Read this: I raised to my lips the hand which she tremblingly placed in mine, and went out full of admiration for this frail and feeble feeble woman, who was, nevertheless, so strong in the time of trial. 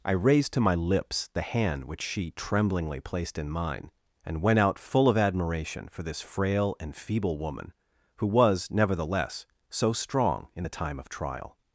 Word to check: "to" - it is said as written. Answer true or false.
true